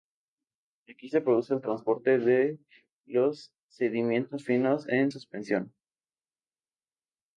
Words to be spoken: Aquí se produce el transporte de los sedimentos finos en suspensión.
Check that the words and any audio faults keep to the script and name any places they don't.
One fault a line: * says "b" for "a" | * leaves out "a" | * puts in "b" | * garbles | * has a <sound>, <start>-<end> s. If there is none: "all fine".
all fine